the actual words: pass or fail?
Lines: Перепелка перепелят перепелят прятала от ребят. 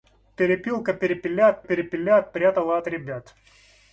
pass